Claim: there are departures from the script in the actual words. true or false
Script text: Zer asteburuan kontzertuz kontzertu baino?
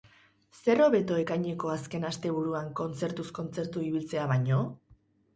true